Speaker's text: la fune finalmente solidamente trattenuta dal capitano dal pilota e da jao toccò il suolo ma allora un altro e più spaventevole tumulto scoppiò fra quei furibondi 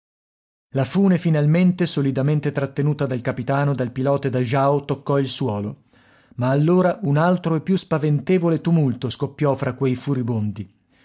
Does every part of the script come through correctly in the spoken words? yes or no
yes